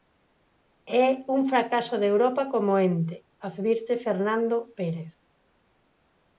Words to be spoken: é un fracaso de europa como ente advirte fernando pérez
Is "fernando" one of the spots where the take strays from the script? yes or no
no